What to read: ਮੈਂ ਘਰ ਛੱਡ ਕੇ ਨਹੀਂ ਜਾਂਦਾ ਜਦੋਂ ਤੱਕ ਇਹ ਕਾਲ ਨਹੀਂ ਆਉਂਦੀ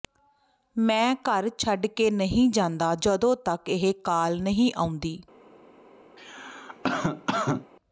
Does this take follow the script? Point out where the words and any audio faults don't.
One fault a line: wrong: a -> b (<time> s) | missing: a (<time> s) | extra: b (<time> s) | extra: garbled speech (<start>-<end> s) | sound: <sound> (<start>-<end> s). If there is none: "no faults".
sound: cough (6.2-7.7 s)